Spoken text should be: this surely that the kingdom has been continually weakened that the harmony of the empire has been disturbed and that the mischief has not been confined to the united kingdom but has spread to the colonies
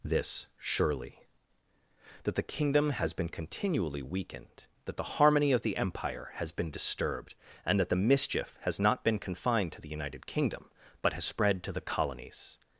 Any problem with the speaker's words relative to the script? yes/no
no